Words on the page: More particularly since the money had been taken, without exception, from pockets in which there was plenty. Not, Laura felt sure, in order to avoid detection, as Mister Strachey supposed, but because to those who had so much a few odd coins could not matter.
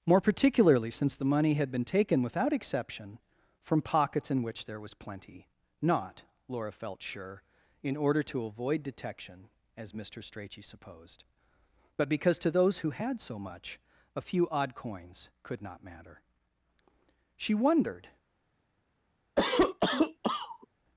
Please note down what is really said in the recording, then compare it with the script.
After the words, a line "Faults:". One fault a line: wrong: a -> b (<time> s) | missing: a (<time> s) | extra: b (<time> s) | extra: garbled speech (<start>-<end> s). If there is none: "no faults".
More particularly since the money had been taken, without exception, from pockets in which there was plenty. Not, Laura felt sure, in order to avoid detection, as Mister Strachey supposed, but because to those who had so much a few odd coins could not matter. She wondered
Faults:
extra: She wondered (17.4 s)